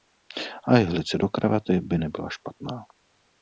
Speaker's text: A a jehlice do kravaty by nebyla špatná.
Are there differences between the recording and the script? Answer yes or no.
yes